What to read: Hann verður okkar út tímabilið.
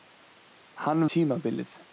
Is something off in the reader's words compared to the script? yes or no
yes